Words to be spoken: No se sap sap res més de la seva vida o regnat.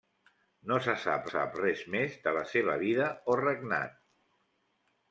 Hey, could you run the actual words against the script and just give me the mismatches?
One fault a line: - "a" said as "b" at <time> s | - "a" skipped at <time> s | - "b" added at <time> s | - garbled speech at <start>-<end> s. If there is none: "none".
none